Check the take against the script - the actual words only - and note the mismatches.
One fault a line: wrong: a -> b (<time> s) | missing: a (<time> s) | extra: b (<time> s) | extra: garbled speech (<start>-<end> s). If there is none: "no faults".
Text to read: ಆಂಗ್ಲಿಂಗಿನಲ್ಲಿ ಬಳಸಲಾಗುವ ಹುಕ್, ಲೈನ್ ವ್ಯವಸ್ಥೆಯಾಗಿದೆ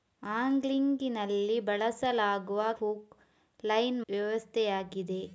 no faults